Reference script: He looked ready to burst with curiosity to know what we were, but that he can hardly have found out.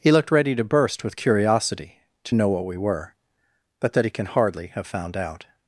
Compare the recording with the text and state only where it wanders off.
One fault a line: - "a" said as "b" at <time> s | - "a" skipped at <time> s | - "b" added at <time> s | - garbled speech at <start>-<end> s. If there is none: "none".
none